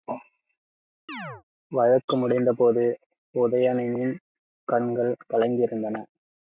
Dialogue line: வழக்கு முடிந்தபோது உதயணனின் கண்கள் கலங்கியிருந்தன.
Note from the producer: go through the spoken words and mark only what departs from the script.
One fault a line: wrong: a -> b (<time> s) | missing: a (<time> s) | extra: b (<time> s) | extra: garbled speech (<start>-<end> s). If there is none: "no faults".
no faults